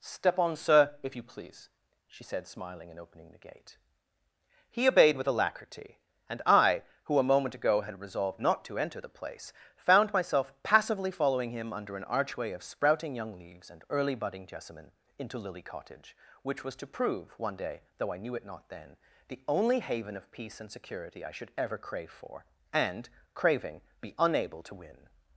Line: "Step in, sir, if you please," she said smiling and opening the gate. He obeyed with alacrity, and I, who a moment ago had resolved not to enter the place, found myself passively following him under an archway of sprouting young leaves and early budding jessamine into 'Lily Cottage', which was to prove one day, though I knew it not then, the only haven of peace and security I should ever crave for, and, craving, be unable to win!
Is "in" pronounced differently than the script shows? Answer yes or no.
yes